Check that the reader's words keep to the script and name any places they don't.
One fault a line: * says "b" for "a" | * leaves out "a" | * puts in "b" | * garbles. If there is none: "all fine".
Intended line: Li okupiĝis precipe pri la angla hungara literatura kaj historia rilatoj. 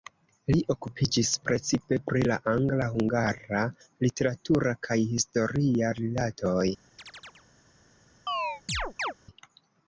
all fine